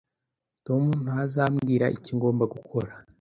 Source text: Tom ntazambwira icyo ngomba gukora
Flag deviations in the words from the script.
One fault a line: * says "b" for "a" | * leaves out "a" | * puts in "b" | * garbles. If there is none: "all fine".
all fine